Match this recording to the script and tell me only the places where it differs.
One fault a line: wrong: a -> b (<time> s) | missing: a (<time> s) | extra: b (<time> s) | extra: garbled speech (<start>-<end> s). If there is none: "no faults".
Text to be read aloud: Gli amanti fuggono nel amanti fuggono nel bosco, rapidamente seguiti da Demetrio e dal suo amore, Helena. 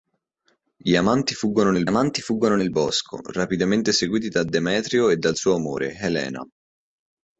no faults